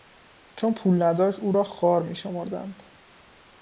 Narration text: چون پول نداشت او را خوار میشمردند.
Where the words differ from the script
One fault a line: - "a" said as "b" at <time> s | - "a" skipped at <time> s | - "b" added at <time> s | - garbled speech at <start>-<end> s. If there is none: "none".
none